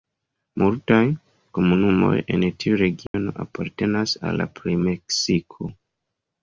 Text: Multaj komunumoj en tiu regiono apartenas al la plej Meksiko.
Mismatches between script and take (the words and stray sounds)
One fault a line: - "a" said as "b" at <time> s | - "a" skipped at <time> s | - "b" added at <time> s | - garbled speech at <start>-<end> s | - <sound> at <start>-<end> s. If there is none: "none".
- dropout at 3.1-3.1 s